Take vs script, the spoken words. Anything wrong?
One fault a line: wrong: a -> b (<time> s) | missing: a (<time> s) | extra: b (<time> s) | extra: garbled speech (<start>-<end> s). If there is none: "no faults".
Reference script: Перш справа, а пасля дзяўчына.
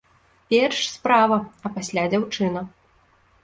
no faults